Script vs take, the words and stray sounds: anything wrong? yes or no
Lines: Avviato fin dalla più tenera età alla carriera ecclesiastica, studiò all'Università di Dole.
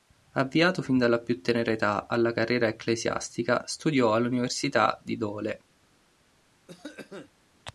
yes